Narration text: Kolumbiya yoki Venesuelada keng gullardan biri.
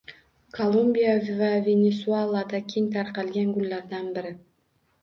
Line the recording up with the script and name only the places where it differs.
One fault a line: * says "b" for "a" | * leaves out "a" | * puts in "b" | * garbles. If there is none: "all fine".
* says "va" for "yoki"
* puts in "tarqalgan"